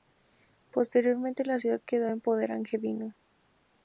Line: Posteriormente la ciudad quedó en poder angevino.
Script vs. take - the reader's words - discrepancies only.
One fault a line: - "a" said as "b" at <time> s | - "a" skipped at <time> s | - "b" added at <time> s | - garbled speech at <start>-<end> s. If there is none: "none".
none